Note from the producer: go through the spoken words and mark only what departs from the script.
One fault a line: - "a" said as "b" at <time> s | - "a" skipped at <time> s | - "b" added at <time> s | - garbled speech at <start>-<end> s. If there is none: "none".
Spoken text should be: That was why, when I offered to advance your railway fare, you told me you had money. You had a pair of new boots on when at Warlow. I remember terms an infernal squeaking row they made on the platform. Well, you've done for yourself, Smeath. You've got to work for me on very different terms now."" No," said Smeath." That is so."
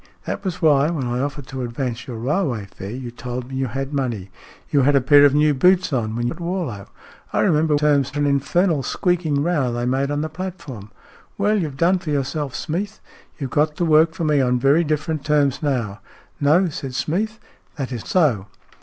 none